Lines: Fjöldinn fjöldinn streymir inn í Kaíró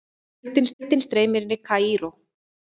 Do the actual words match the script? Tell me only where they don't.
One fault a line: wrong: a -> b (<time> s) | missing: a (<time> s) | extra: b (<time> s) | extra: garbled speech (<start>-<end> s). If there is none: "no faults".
no faults